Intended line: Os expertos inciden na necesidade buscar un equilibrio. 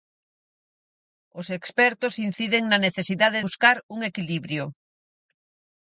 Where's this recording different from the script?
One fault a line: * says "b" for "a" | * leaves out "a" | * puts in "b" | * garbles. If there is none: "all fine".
all fine